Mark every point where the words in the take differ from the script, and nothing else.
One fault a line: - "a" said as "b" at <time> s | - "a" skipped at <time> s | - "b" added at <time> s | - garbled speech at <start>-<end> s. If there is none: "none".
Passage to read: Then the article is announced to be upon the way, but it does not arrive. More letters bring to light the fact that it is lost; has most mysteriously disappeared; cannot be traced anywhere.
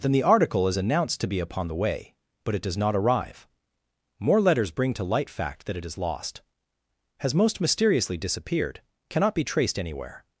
- "the" skipped at 5.3 s